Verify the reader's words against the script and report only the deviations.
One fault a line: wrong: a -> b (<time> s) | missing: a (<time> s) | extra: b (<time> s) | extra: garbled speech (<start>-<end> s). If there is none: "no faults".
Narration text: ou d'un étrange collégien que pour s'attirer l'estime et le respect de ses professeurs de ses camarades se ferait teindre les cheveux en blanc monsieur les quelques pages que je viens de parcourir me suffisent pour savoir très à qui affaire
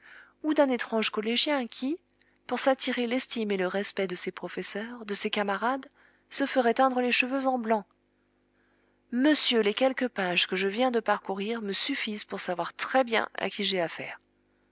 wrong: que -> qui (1.7 s)
extra: bien (13.0 s)
extra: j'ai (13.6 s)